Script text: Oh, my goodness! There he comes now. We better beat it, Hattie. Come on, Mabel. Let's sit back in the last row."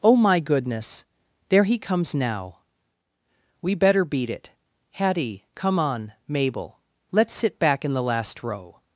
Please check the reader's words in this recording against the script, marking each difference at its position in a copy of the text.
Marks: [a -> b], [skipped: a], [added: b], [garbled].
Oh, my goodness! There he comes now. We better beat it, Hattie. Come on, Mabel. Let's sit back in the last row."